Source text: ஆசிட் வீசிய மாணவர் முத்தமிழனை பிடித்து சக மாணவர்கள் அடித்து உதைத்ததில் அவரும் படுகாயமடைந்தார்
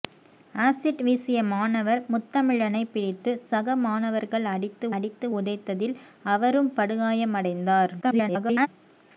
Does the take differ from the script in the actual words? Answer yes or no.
yes